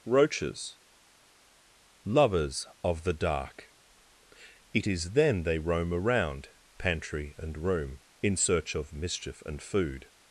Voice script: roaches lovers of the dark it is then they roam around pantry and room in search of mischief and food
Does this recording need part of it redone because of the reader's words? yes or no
no